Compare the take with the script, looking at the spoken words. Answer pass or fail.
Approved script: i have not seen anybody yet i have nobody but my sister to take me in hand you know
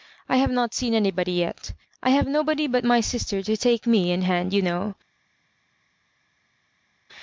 pass